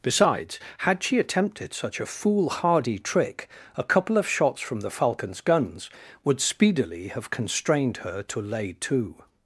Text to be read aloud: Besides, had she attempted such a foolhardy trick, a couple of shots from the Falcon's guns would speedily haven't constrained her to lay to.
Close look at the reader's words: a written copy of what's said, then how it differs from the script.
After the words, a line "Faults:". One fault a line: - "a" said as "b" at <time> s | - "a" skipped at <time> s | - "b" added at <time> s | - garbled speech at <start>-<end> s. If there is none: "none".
Besides, had she attempted such a foolhardy trick, a couple of shots from the Falcon's guns would speedily have constrained her to lay to.
Faults:
- "haven't" said as "have" at 7.1 s